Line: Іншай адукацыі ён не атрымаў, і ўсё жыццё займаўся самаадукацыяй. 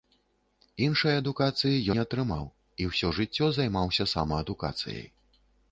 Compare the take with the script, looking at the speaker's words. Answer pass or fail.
fail